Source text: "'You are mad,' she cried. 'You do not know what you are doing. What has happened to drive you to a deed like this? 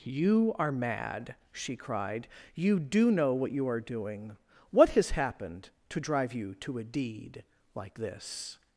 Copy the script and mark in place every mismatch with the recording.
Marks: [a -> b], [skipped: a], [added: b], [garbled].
"'You are mad,' she cried. 'You do [skipped: not] know what you are doing. What has happened to drive you to a deed like this?